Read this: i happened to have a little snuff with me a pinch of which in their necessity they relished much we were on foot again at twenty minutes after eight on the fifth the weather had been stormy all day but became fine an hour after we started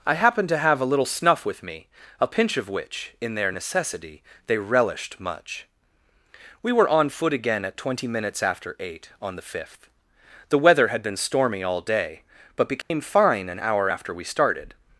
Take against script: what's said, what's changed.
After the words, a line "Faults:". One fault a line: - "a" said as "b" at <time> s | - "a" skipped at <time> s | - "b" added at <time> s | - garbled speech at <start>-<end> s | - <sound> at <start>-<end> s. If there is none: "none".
i happened to have a little snuff with me a pinch of which in their necessity they relished much we were on foot again at twenty minutes after eight on the fifth the weather had been stormy all day but became fine an hour after we started
Faults:
- dropout at 12.8-12.9 s